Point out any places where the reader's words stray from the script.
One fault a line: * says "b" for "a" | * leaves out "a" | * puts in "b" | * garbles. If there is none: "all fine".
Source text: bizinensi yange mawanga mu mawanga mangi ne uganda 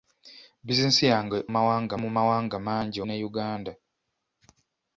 all fine